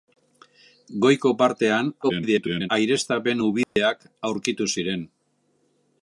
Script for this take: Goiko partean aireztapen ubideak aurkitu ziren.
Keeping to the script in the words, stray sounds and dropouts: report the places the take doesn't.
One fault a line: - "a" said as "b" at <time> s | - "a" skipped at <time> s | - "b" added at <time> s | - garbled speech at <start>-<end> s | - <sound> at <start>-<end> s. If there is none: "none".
- garbled speech at 2.0-2.7 s
- dropout at 3.6-3.8 s